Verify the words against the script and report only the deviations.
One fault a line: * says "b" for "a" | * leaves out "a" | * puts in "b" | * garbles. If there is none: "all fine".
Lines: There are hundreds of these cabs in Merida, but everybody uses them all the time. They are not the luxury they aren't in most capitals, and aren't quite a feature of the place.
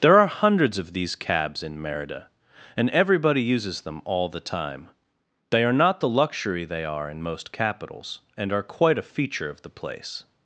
* says "and" for "but"
* says "are" for "aren't"
* says "are" for "aren't"